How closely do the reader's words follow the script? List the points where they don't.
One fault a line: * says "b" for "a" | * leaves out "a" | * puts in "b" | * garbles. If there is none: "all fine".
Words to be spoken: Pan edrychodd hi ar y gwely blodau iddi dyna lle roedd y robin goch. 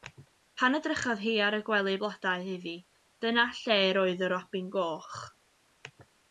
all fine